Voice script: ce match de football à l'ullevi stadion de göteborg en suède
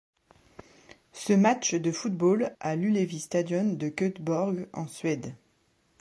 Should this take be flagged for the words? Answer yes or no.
no